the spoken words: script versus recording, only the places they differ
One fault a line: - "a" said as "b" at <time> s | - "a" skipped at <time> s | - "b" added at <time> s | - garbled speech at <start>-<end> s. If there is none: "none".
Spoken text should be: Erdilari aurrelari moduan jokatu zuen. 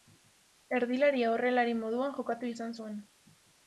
- "izan" added at 2.6 s